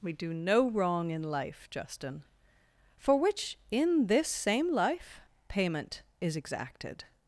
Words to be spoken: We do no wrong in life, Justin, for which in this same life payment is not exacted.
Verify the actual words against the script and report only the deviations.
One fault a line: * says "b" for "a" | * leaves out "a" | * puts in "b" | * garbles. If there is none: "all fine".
* leaves out "not"